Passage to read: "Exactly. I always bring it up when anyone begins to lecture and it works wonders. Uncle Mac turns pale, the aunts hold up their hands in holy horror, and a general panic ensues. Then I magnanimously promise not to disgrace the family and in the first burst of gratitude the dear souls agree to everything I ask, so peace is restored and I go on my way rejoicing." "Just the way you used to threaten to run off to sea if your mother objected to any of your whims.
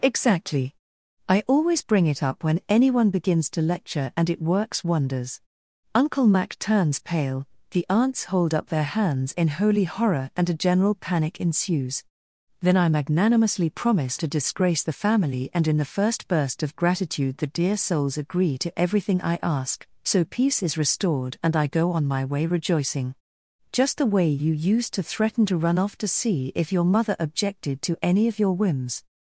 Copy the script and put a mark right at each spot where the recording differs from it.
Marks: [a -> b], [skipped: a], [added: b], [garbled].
"Exactly. I always bring it up when anyone begins to lecture and it works wonders. Uncle Mac turns pale, the aunts hold up their hands in holy horror, and a general panic ensues. Then I magnanimously promise [skipped: not] to disgrace the family and in the first burst of gratitude the dear souls agree to everything I ask, so peace is restored and I go on my way rejoicing." "Just the way you used to threaten to run off to sea if your mother objected to any of your whims.